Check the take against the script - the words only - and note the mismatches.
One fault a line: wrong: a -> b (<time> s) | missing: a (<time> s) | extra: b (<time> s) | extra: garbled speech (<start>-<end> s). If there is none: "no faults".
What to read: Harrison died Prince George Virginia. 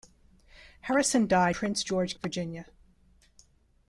no faults